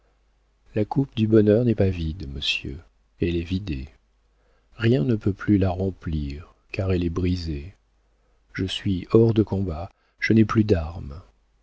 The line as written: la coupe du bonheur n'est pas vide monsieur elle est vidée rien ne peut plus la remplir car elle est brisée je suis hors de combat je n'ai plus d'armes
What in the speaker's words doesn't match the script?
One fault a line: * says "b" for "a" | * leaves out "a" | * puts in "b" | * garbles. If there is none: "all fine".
all fine